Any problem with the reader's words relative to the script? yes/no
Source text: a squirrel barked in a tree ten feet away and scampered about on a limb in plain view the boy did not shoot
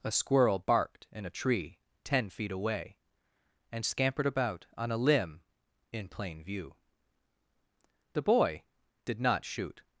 no